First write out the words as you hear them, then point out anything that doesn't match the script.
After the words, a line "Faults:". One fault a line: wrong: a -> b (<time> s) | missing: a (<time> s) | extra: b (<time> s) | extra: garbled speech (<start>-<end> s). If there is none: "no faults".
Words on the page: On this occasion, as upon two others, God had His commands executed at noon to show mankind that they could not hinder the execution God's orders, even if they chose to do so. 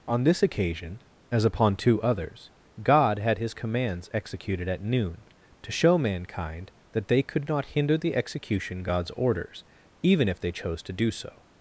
On this occasion, as upon two others, God had His commands executed at noon to show mankind that they could not hinder the execution God's orders, even if they chose to do so.
Faults:
no faults